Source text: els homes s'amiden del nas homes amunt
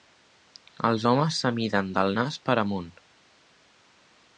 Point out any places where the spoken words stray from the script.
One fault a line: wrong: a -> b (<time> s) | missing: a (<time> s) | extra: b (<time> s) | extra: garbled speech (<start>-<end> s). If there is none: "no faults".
wrong: homes -> per (2.5 s)